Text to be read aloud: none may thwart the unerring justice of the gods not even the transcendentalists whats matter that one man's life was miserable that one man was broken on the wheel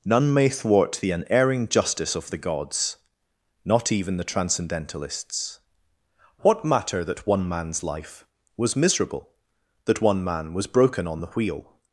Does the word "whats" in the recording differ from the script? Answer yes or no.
yes